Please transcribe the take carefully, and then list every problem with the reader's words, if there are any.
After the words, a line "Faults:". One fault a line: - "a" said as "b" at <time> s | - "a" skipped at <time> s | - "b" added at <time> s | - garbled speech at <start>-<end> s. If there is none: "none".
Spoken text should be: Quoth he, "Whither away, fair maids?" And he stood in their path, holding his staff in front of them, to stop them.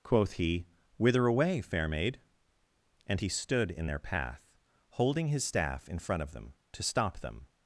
Quoth he, "Whither away, fair maid?" And he stood in their path, holding his staff in front of them, to stop them.
Faults:
- "maids" said as "maid" at 1.9 s